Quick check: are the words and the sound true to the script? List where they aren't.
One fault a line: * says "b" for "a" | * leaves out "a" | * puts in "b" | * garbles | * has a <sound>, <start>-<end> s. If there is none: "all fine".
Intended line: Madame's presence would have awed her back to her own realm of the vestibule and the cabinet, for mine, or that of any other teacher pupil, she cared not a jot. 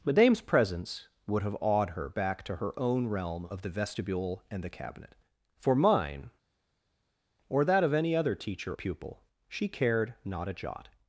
all fine